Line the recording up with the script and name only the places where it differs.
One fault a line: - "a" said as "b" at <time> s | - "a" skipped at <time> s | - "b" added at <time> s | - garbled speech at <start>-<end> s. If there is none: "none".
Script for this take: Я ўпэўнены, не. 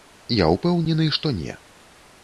- "што" added at 1.2 s